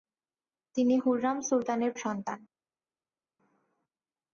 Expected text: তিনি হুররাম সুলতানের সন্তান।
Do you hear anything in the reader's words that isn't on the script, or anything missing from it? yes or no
no